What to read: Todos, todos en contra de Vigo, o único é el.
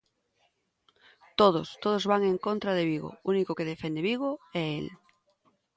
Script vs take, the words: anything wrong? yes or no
yes